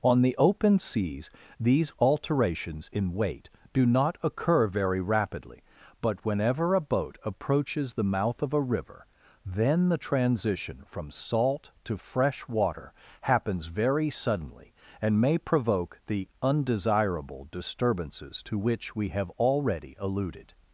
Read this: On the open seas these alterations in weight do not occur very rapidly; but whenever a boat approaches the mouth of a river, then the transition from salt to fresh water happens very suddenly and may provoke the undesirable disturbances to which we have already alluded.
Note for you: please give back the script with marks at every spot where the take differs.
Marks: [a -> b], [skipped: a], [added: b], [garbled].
On the open seas these alterations in weight do not occur very rapidly; but whenever a boat approaches the mouth of a river, then the transition from salt to fresh water happens very suddenly and may provoke the undesirable disturbances to which we have already alluded.